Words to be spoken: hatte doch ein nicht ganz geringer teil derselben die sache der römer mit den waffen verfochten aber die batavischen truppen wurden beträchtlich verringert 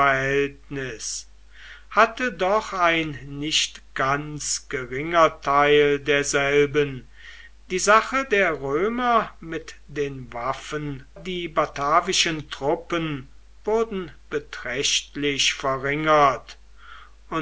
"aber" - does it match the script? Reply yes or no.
no